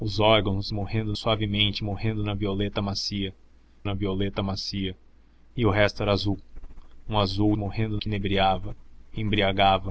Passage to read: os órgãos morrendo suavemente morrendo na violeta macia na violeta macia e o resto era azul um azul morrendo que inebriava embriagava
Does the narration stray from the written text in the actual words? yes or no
no